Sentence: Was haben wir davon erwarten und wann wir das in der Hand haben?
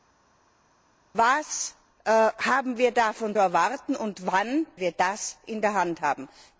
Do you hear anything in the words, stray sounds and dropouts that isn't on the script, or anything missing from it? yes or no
no